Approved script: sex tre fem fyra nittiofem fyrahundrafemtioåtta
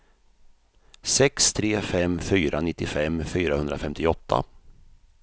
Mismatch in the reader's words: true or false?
false